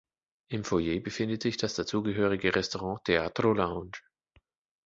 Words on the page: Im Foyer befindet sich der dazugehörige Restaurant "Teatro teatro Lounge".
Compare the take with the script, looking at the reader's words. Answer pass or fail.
fail